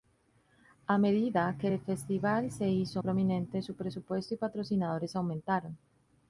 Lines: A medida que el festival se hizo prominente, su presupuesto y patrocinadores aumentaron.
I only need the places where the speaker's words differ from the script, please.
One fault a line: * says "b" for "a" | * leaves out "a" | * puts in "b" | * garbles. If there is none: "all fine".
all fine